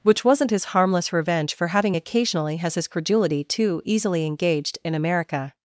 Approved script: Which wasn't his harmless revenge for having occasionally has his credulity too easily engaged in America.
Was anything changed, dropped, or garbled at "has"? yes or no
no